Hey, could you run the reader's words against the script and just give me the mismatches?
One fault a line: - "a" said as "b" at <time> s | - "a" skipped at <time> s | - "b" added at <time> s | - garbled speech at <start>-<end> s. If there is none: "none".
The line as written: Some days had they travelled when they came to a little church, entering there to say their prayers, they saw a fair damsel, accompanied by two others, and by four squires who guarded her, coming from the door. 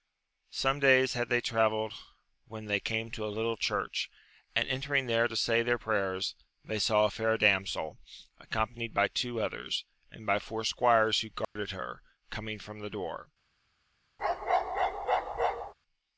- "and" added at 4.5 s